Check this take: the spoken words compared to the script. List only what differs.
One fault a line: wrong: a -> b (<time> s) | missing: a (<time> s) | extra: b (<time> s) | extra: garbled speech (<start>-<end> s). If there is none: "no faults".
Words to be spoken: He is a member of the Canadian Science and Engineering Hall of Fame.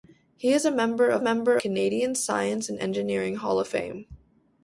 wrong: the -> member (1.2 s)